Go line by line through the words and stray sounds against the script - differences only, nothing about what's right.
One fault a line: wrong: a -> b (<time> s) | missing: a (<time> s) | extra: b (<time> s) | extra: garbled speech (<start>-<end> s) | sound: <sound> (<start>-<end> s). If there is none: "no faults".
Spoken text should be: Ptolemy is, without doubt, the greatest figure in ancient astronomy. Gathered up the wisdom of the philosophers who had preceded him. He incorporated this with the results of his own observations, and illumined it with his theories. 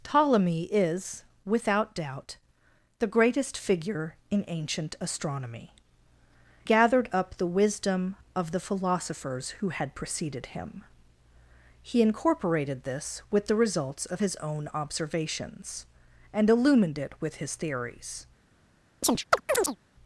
sound: chirp (19.0-19.8 s)